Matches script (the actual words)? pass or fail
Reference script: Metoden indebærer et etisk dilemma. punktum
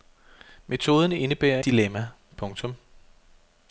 fail